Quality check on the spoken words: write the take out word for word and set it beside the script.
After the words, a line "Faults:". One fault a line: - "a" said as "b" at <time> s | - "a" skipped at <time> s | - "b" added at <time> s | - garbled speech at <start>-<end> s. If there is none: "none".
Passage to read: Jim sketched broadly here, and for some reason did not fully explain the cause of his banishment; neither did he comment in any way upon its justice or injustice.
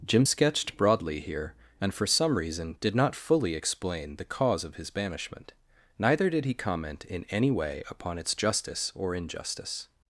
Jim sketched broadly here, and for some reason did not fully explain the cause of his banishment; neither did he comment in any way upon its justice or injustice.
Faults:
none